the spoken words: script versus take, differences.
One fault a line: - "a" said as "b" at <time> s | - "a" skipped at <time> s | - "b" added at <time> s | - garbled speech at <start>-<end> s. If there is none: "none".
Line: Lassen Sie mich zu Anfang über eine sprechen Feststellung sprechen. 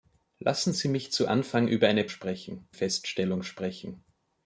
none